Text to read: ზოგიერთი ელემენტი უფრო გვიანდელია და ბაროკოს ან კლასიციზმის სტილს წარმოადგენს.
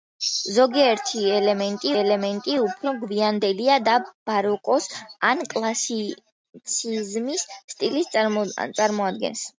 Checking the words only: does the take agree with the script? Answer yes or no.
no